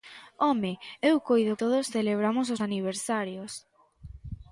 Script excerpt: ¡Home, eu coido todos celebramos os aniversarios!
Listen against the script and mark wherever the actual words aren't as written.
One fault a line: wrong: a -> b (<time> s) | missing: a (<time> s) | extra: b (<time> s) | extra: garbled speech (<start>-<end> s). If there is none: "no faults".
no faults